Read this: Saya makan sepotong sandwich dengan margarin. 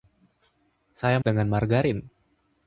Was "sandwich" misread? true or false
true